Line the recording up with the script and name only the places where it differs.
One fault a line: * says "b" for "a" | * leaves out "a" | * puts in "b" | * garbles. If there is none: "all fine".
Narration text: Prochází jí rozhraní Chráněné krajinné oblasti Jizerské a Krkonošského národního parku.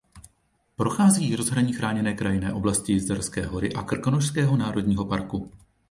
* puts in "hory"